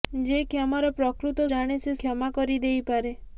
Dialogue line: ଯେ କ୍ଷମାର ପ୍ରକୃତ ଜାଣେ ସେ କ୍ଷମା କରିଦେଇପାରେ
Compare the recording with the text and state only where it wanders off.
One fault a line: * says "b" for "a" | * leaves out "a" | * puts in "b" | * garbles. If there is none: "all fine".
all fine